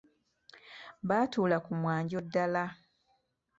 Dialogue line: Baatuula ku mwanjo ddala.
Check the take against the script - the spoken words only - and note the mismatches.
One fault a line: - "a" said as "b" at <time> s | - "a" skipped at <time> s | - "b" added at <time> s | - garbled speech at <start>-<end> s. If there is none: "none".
none